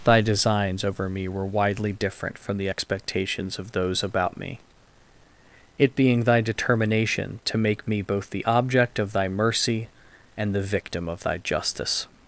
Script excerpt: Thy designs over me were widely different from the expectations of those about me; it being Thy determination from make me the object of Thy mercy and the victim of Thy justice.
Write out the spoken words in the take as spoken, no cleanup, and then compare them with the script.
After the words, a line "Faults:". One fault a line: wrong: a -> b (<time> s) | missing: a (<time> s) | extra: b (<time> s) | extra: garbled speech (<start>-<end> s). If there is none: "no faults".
Thy designs over me were widely different from the expectations of those about me; it being Thy determination to make me both the object of Thy mercy and the victim of Thy justice.
Faults:
wrong: from -> to (7.5 s)
extra: both (8.0 s)